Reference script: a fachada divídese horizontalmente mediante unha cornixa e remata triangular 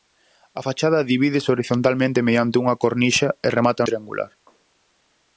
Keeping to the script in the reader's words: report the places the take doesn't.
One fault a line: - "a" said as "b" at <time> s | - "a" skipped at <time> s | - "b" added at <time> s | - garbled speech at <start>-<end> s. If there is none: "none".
none